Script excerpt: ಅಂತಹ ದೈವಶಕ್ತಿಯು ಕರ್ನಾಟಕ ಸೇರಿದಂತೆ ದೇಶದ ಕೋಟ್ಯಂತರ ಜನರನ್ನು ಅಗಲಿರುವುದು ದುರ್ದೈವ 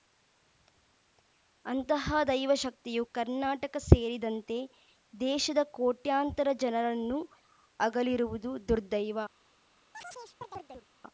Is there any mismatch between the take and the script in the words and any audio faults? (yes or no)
yes